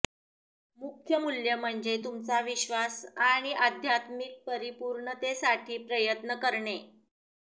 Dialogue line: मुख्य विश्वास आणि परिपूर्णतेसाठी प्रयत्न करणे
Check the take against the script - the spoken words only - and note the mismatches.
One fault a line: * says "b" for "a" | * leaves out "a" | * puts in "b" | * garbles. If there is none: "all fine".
* puts in "मूल्य म्हणजे तुमचा"
* puts in "आध्यात्मिक"